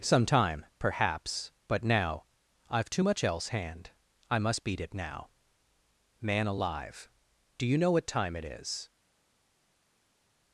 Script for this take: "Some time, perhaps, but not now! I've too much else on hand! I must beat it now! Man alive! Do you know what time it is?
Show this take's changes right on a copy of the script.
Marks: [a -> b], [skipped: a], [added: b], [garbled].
"Some time, perhaps, but [skipped: not] now! I've too much else [skipped: on] hand! I must beat it now! Man alive! Do you know what time it is?